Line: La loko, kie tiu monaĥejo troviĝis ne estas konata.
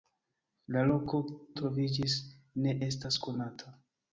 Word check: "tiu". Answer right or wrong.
wrong